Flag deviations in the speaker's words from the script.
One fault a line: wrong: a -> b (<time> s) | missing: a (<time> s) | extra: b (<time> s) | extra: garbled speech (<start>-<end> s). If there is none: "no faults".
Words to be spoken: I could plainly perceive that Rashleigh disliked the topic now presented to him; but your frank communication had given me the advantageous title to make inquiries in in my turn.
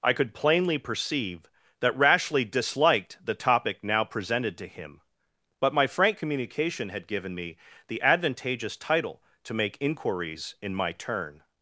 wrong: your -> my (5.7 s)
missing: in (10.7 s)